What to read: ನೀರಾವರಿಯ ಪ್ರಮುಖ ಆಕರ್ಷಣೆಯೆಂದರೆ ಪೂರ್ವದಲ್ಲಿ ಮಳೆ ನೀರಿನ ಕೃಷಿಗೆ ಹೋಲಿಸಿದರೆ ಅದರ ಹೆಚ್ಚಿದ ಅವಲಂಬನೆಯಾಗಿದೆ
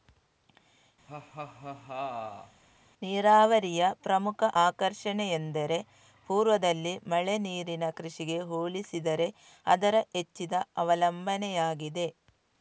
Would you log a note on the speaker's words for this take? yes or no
no